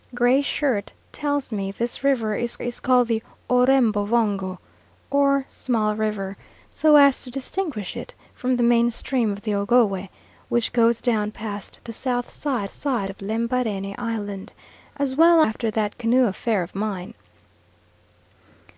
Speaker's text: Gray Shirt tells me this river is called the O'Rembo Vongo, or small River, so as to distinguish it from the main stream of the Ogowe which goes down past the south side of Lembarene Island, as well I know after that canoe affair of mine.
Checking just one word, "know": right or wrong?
wrong